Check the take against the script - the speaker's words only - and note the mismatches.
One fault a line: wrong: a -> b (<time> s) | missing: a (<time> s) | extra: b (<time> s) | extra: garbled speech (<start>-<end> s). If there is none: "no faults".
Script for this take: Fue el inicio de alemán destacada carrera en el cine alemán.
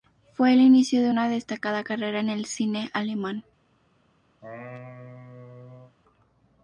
wrong: alemán -> una (1.1 s)